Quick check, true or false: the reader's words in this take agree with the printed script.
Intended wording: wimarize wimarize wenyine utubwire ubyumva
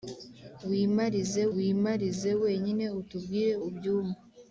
true